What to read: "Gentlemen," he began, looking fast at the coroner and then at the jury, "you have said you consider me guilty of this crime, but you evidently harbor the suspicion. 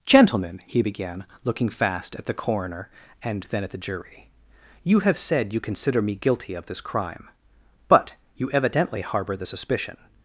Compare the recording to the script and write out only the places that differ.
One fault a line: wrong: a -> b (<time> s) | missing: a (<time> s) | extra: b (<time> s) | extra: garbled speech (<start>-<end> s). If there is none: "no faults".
no faults